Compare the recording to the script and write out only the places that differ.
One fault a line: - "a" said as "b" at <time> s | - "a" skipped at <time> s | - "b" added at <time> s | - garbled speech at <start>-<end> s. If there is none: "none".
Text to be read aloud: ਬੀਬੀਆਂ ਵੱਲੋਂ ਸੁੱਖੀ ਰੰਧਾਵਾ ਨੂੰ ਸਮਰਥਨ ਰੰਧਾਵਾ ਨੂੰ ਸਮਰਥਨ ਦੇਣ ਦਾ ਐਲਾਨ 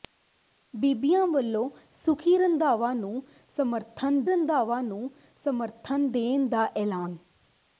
none